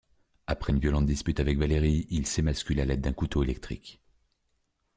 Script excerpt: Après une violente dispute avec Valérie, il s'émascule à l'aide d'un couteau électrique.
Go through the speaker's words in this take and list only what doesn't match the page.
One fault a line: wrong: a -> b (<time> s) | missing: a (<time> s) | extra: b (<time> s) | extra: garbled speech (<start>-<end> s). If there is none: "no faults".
no faults